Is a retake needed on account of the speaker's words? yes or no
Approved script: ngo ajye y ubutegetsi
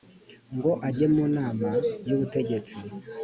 yes